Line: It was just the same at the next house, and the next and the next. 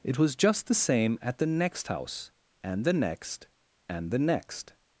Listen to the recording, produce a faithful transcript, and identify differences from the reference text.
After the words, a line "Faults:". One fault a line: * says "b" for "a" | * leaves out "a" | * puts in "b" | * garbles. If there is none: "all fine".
It was just the same at the next house, and the next and the next.
Faults:
all fine